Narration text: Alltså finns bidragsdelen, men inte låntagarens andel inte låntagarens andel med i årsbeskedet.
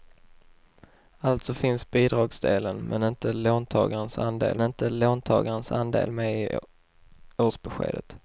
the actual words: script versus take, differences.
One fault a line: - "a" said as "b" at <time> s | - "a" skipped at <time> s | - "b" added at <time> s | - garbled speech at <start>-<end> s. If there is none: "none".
none